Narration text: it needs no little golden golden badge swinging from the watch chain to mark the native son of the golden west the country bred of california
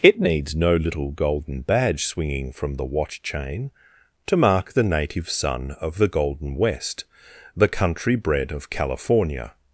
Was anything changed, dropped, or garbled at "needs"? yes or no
no